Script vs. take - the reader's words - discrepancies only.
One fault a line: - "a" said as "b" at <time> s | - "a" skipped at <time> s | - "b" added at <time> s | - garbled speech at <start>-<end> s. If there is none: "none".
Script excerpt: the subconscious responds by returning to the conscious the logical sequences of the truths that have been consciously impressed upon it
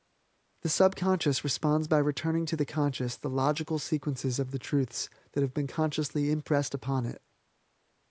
none